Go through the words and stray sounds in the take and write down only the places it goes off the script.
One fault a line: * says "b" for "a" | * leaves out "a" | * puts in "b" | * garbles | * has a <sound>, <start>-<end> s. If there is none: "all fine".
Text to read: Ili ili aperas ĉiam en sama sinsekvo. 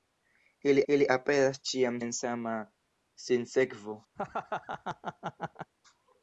* has a laugh, 4.2-5.7 s